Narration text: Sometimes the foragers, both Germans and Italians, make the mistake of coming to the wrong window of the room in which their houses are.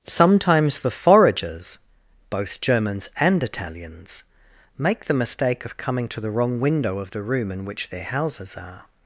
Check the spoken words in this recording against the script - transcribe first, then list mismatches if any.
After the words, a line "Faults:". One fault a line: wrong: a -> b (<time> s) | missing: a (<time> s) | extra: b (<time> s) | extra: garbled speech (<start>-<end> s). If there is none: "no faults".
Sometimes the foragers, both Germans and Italians, make the mistake of coming to the wrong window of the room in which their houses are.
Faults:
no faults